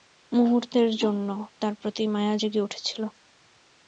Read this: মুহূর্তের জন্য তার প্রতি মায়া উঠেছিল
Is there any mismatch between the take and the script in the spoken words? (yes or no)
yes